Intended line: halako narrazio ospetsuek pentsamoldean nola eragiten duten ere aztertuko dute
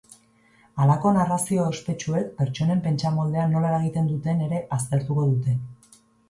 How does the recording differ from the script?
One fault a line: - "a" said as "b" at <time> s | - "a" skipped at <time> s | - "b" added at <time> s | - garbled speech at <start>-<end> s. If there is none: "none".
- "pertsonen" added at 2.4 s